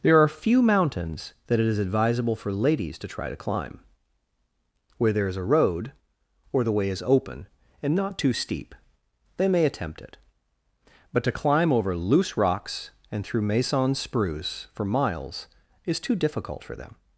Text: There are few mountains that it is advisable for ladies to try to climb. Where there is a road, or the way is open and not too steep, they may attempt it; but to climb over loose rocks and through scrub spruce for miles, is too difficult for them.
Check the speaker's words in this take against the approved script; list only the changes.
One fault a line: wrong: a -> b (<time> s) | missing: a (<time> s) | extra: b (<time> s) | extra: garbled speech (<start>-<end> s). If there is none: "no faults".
wrong: scrub -> maison (13.4 s)